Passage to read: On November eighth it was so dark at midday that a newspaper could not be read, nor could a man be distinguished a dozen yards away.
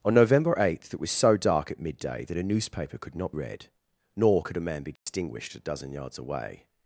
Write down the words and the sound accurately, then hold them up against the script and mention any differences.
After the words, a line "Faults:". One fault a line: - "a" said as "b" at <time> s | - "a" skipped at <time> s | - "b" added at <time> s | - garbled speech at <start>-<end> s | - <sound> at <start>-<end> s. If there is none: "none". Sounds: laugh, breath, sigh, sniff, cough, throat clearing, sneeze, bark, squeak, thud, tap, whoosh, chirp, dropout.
On November eighth it was so dark at midday that a newspaper could not read, nor could a man be distinguished a dozen yards away.
Faults:
- "be" skipped at 3.3 s
- dropout at 5.0-5.1 s